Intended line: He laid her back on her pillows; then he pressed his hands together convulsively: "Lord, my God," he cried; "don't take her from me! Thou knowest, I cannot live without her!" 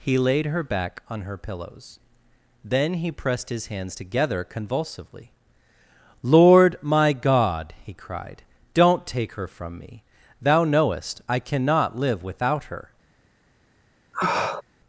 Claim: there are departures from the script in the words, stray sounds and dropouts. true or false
true